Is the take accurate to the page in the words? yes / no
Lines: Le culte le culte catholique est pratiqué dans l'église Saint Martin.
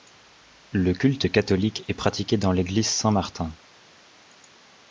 no